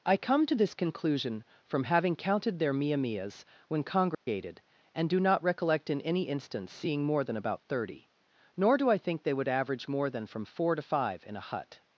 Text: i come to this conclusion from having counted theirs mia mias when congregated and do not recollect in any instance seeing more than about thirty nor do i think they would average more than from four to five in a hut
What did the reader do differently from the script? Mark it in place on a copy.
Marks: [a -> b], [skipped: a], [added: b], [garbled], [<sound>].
i come to this conclusion from having counted [theirs -> their] mia mias when congregated [dropout] and do not recollect in any instance seeing more than about thirty nor do i think they would average more than from four to five in a hut